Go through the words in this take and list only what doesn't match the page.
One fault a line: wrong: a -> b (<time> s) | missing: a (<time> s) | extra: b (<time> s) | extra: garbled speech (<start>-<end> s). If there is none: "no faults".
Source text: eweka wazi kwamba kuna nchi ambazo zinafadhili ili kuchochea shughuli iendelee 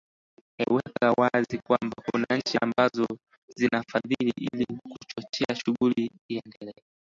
no faults